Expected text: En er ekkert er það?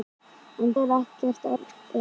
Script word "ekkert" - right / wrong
right